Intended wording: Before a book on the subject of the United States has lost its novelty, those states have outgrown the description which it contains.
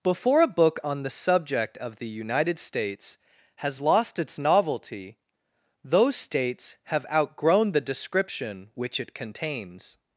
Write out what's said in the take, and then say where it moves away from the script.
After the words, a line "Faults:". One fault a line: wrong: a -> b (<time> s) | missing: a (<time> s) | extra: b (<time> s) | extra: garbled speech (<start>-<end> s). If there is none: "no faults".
Before a book on the subject of the United States has lost its novelty, those states have outgrown the description which it contains.
Faults:
no faults